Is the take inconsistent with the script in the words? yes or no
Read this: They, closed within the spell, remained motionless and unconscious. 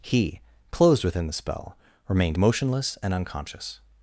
yes